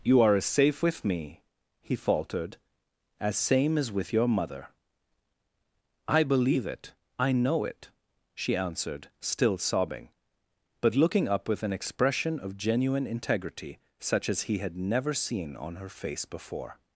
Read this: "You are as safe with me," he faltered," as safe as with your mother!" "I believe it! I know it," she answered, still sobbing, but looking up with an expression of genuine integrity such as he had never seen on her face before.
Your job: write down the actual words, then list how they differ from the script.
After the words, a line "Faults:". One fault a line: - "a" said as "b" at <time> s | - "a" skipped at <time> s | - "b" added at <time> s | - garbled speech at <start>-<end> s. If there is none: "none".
"You are as safe with me," he faltered," as same as with your mother!" "I believe it! I know it," she answered, still sobbing, but looking up with an expression of genuine integrity such as he had never seen on her face before.
Faults:
- "safe" said as "same" at 3.4 s